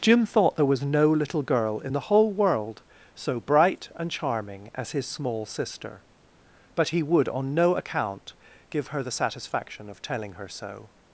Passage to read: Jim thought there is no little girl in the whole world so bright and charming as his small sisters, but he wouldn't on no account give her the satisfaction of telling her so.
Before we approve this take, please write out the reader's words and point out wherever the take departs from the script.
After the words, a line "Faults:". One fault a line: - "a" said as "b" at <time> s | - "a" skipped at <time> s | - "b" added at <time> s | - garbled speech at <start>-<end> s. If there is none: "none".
Jim thought there was no little girl in the whole world so bright and charming as his small sister, but he would on no account give her the satisfaction of telling her so.
Faults:
- "is" said as "was" at 0.7 s
- "sisters" said as "sister" at 5.5 s
- "wouldn't" said as "would" at 7.0 s